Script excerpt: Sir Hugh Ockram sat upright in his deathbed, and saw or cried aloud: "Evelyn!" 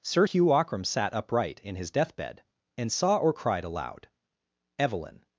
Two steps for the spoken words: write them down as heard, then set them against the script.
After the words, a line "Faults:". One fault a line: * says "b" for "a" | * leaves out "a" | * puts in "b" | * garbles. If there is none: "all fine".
Sir Hugh Ockram sat upright in his deathbed, and saw or cried aloud: "Evelyn!"
Faults:
all fine